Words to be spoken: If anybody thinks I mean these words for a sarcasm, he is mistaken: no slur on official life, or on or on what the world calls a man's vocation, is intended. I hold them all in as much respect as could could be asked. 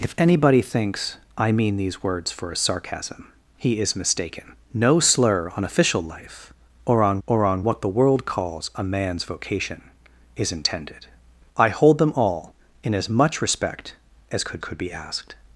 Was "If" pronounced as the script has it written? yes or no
yes